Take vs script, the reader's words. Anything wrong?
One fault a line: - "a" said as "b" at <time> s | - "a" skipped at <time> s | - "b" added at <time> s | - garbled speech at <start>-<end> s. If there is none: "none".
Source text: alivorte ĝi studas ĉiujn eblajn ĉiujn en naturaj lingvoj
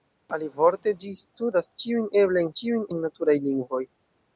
none